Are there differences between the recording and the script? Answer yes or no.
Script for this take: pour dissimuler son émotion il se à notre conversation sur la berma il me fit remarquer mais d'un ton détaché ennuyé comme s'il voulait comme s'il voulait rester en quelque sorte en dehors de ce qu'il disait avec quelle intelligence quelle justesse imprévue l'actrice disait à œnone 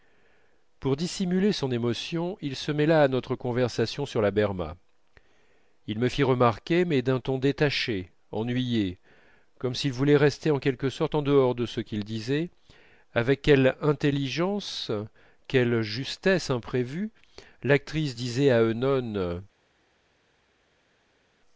yes